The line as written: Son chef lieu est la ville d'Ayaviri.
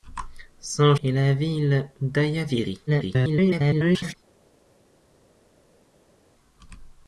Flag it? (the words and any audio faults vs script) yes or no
yes